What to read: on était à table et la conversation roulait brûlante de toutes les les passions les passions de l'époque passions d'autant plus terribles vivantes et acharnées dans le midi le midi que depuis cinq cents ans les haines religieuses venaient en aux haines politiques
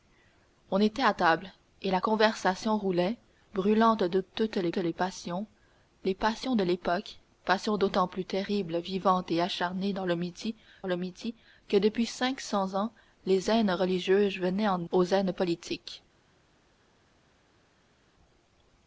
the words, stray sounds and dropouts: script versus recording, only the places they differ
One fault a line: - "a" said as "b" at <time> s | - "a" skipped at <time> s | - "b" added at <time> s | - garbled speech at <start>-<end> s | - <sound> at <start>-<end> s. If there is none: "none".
none